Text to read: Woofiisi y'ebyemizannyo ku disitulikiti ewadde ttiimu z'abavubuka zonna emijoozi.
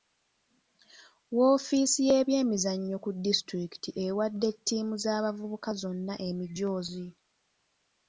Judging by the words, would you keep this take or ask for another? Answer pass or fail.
pass